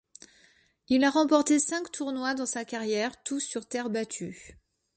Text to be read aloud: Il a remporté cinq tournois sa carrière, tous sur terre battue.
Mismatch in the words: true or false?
true